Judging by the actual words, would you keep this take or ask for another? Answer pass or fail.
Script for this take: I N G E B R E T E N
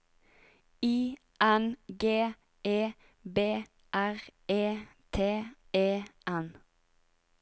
pass